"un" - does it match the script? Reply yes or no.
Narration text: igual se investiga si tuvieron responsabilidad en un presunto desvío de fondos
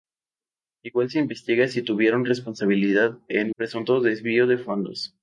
no